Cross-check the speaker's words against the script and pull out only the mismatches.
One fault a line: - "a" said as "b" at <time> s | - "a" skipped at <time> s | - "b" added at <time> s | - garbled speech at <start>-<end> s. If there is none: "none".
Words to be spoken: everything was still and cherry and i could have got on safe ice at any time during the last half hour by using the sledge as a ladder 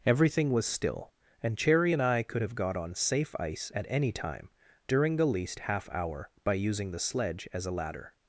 - "last" said as "least" at 5.2 s